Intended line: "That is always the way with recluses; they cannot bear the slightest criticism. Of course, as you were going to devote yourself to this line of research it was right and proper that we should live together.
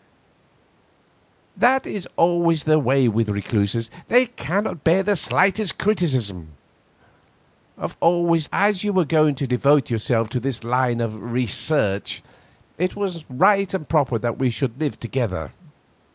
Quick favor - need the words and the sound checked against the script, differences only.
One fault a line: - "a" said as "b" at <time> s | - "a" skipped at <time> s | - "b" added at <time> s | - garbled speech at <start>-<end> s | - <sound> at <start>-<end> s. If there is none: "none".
- "course" said as "always" at 8.0 s